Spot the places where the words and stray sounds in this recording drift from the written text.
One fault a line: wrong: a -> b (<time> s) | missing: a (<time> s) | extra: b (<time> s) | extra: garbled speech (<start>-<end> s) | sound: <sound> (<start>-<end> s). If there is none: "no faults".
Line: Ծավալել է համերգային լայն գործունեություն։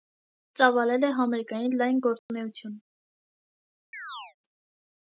sound: dropout (2.2-2.3 s)
sound: chirp (3.9-4.4 s)